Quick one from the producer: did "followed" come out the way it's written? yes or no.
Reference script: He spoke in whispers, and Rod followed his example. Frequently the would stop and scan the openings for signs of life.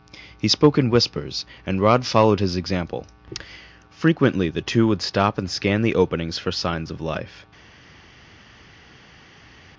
yes